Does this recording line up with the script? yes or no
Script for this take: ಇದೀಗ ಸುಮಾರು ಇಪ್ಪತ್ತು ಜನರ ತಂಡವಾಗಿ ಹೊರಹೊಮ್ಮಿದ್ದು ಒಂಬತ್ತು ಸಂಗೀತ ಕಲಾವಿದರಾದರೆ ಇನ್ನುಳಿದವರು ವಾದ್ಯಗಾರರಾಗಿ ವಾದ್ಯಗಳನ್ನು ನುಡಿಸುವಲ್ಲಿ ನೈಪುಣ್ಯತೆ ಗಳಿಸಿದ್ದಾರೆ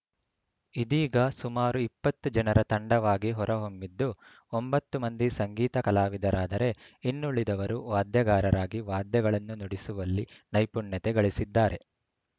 no